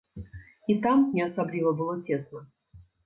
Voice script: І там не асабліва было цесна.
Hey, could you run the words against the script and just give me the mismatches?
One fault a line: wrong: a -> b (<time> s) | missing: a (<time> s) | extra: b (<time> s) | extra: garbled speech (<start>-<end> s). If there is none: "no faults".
no faults